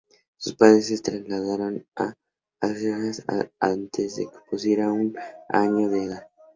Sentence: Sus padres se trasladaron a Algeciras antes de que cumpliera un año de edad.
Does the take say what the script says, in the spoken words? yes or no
yes